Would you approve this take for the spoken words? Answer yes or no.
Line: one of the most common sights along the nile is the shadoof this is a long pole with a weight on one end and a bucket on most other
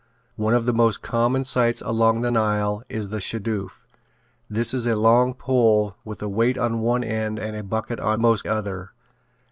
yes